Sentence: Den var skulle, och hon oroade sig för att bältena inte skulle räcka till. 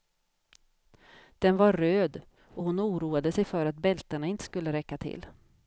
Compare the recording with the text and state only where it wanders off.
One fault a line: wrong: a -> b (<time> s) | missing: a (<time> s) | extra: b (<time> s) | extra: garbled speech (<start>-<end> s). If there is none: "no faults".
wrong: skulle -> röd (1.7 s)